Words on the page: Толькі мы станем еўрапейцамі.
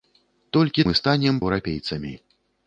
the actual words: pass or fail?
pass